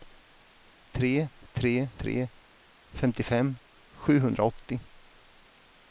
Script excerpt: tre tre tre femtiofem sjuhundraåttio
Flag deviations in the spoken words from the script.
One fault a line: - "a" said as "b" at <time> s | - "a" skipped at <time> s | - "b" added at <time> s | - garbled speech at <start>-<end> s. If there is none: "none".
none